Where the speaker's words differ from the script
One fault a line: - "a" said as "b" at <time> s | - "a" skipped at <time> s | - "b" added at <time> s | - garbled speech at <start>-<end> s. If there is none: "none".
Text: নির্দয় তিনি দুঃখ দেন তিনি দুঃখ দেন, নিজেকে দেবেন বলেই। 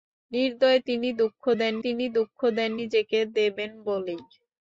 none